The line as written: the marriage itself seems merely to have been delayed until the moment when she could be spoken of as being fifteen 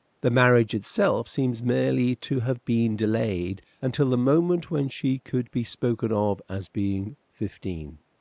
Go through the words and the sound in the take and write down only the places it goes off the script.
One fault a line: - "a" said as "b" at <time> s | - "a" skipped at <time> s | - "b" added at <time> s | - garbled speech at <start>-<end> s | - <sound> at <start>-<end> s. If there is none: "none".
none